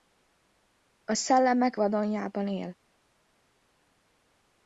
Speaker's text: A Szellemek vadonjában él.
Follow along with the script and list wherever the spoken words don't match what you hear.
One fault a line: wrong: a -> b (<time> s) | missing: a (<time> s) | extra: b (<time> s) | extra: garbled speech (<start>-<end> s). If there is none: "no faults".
no faults